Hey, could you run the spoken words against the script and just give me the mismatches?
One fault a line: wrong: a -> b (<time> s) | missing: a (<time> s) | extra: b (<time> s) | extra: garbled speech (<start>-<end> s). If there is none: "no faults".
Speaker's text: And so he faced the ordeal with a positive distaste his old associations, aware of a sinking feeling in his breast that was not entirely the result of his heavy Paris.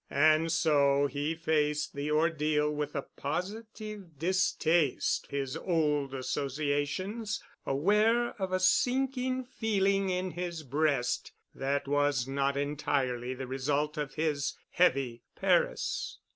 no faults